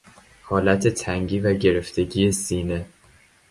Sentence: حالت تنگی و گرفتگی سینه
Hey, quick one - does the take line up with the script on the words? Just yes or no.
yes